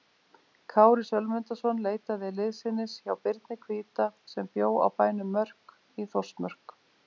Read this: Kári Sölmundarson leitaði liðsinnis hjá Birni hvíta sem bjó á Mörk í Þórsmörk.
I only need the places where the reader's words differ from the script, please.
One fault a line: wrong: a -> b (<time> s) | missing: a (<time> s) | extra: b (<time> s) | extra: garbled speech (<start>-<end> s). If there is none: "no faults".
extra: bænum (5.0 s)